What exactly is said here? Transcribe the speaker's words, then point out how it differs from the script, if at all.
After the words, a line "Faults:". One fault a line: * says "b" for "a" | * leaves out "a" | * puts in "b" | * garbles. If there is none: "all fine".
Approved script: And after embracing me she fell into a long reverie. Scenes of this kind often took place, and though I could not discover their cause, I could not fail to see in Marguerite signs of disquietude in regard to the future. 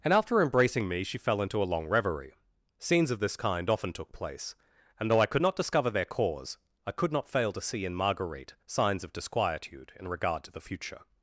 And after embracing me she fell into a long reverie. Scenes of this kind often took place, and though I could not discover their cause, I could not fail to see in Marguerite signs of disquietude in regard to the future.
Faults:
all fine